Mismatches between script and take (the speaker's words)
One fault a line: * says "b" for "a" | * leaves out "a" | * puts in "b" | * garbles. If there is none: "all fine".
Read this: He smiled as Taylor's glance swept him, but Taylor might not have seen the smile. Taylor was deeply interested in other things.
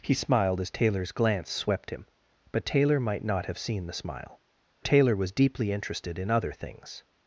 all fine